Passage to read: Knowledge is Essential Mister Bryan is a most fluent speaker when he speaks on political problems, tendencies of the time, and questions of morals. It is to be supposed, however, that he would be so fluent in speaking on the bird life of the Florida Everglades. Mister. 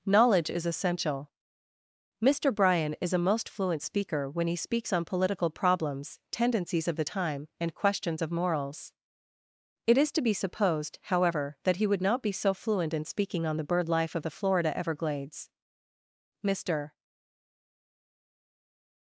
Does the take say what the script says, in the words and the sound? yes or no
no